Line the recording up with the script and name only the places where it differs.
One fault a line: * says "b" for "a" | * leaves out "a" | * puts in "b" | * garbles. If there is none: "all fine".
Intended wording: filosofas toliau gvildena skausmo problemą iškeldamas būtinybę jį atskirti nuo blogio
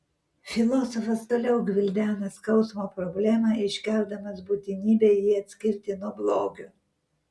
all fine